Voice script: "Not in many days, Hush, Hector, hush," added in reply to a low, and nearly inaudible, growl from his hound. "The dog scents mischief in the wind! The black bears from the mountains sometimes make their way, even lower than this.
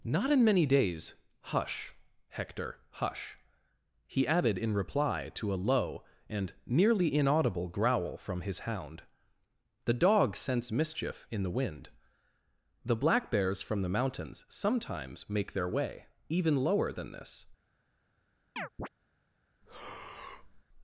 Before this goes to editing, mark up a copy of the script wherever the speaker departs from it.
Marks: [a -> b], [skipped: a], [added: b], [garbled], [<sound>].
"Not in many days, Hush, Hector, hush," [added: he] added in reply to a low, and nearly inaudible, growl from his hound. "The dog scents mischief in the wind! The black bears from the mountains sometimes make their way, even lower than this. [chirp] [breath]